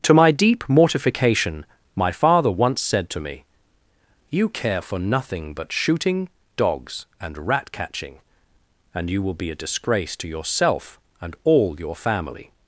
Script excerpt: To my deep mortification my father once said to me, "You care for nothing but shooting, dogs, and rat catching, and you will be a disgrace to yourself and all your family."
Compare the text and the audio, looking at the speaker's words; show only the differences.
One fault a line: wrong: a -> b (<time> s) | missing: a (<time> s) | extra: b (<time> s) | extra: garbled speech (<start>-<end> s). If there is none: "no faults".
no faults